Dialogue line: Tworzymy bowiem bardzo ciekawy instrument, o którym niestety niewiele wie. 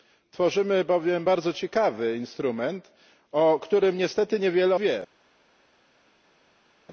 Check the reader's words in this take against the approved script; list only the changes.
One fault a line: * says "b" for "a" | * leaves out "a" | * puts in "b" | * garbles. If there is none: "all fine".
all fine